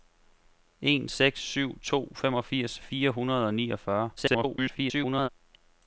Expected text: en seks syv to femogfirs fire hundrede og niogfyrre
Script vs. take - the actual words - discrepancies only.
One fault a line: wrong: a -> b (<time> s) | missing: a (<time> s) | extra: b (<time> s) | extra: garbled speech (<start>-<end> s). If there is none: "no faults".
extra: garbled speech (4.2-5.3 s)